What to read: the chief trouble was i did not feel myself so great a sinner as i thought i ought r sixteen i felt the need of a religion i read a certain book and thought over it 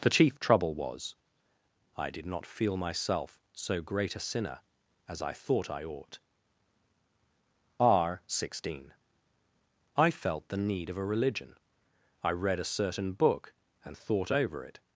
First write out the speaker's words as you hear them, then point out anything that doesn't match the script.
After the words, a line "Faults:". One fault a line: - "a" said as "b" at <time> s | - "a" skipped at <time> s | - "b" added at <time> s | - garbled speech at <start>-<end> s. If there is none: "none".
the chief trouble was i did not feel myself so great a sinner as i thought i ought r sixteen i felt the need of a religion i read a certain book and thought over it
Faults:
none